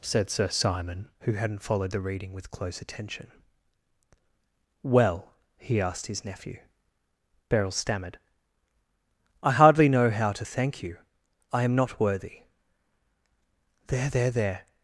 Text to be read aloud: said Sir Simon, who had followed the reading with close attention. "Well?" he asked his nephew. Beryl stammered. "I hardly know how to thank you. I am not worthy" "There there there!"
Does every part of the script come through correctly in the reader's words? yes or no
no